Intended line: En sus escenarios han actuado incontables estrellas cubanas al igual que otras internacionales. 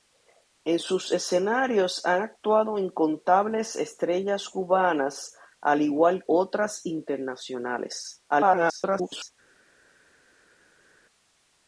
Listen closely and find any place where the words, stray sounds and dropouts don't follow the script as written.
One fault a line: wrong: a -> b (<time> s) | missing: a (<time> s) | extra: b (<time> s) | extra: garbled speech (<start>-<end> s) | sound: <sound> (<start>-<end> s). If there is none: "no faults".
missing: que (6.2 s)
extra: garbled speech (8.3-9.3 s)